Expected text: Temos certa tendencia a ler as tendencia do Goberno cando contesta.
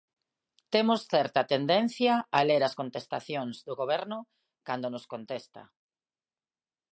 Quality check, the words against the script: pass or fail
fail